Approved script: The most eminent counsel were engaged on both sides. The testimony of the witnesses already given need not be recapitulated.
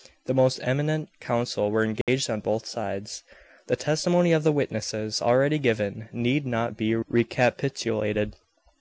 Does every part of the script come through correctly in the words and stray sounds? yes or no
no